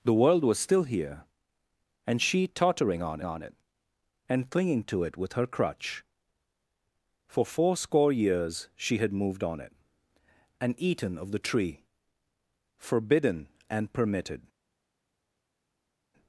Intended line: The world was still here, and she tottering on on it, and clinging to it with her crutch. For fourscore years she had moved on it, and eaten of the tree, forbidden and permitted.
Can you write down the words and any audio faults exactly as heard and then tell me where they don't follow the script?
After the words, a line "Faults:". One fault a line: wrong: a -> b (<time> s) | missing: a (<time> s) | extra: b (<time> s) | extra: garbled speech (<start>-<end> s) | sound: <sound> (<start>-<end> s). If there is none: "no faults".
The world was still here, and she tottering on on it, and clinging to it with her crutch. For fourscore years she had moved on it, and eaten of the tree, forbidden and permitted.
Faults:
no faults